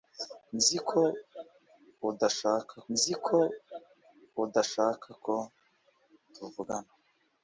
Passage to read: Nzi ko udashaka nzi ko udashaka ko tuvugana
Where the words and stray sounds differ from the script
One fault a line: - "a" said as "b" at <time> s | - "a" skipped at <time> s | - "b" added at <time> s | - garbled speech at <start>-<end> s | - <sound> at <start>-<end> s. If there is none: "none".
none